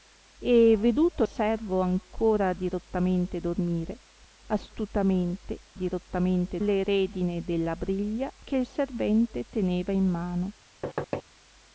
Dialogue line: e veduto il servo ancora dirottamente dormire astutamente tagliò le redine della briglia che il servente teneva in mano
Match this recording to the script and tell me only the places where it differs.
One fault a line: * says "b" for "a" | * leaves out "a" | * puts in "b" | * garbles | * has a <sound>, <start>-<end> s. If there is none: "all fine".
* leaves out "il"
* says "dirottamente" for "tagliò"
* has a thud, 10.8-11.2 s